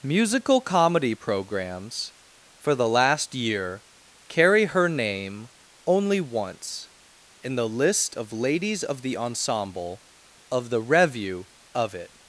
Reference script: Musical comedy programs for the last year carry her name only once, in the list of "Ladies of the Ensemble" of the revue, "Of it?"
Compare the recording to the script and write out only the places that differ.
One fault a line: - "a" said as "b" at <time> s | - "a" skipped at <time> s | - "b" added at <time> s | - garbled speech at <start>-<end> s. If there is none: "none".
none